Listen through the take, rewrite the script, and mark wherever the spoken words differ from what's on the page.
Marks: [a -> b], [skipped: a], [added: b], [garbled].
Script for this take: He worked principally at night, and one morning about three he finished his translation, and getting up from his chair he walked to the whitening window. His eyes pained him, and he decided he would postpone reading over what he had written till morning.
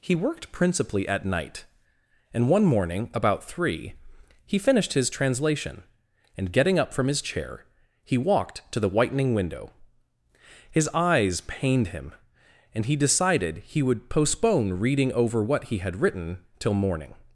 He worked principally at night, and one morning about three he finished his translation, and getting up from his chair he walked to the whitening window. His eyes pained him, and he decided he would postpone reading over what he had written till morning.